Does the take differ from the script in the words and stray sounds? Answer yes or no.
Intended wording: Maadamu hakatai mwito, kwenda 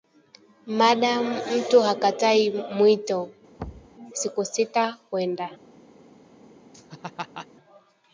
yes